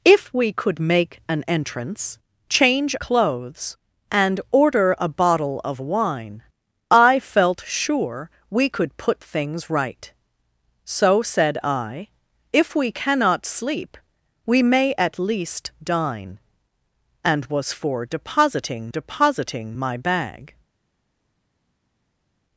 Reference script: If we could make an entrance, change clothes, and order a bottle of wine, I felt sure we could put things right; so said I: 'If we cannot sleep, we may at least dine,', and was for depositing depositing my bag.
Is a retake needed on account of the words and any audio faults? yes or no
no